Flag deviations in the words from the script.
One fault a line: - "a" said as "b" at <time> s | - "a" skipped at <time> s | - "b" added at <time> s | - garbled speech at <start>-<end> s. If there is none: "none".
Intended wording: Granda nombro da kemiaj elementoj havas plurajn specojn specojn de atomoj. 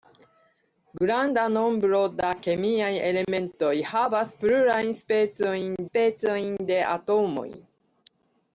none